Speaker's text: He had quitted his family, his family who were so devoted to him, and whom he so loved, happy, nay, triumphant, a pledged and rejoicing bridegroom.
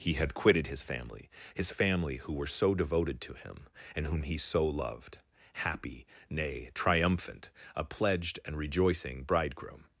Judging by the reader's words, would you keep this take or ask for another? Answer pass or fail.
pass